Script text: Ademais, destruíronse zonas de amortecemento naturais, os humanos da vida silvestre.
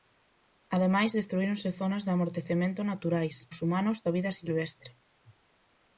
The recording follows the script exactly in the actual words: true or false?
true